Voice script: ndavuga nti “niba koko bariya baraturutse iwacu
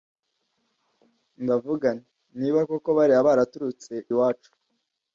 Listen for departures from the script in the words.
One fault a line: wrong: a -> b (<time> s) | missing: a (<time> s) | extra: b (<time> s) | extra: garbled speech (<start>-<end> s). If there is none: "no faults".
no faults